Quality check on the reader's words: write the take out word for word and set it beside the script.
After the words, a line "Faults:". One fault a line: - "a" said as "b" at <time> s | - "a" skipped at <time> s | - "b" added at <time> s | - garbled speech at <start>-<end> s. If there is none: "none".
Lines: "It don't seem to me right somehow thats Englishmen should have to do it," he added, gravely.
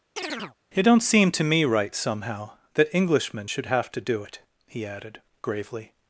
"It don't seem to me right somehow that Englishmen should have to do it," he added, gravely.
Faults:
- "thats" said as "that" at 2.7 s